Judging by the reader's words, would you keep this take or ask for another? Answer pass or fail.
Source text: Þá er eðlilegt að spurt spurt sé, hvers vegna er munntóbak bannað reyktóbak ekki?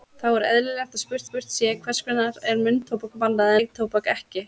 pass